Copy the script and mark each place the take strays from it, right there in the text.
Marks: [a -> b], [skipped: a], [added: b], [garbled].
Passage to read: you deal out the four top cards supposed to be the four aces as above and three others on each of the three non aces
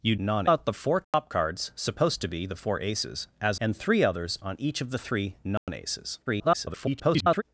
you [deal -> non] out the four top cards supposed to be the four aces as [skipped: above] and three others on each of the three non aces [garbled]